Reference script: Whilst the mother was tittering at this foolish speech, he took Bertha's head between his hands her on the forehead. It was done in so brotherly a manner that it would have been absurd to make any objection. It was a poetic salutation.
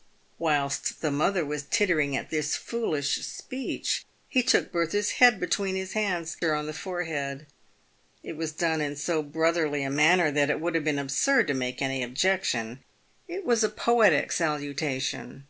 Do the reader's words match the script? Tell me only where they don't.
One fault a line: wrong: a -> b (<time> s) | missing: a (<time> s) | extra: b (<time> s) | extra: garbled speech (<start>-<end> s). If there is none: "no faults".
no faults